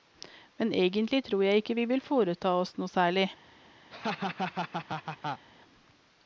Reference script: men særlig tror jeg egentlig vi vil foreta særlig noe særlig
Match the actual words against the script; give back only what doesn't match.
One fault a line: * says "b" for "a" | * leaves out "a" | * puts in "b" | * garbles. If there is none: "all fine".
* says "egentlig" for "særlig"
* says "ikke" for "egentlig"
* says "oss" for "særlig"